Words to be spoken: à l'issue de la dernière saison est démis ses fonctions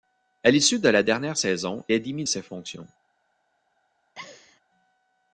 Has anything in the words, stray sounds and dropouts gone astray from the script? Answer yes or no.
yes